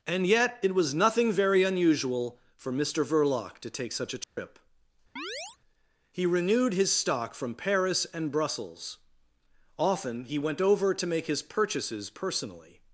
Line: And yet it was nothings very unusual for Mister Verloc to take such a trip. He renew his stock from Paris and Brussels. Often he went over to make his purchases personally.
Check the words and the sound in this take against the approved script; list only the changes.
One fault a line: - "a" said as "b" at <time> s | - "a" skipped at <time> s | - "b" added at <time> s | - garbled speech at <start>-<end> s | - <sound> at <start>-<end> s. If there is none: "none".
- "nothings" said as "nothing" at 0.9 s
- dropout at 4.2-4.4 s
- chirp at 5.2-5.6 s
- "renew" said as "renewed" at 6.3 s